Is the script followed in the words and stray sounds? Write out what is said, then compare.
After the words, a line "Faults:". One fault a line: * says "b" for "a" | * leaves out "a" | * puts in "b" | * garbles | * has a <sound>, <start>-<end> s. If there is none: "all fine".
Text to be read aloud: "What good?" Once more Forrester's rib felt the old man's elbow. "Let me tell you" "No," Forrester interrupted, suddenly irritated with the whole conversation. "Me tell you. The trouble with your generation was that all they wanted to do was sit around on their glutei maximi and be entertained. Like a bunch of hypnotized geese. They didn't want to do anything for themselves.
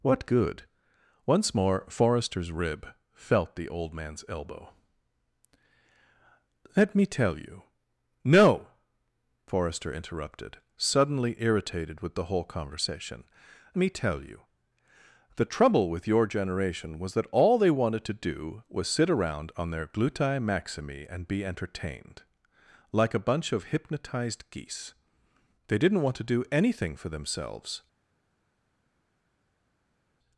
"What good?" Once more Forrester's rib felt the old man's elbow. "Let me tell you" "No," Forrester interrupted, suddenly irritated with the whole conversation. "Me tell you. The trouble with your generation was that all they wanted to do was sit around on their glutei maximi and be entertained. Like a bunch of hypnotized geese. They didn't want to do anything for themselves.
Faults:
all fine